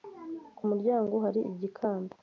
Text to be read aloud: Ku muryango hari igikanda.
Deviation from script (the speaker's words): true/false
false